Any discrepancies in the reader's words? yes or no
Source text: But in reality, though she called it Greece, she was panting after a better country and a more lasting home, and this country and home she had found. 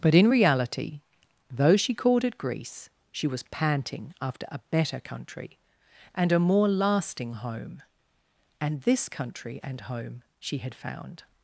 no